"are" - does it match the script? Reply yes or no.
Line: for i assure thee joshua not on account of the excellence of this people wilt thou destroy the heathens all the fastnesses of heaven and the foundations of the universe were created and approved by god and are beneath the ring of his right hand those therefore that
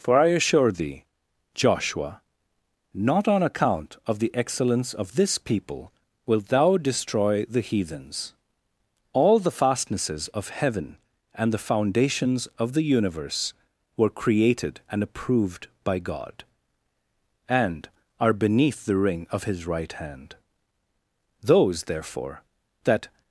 yes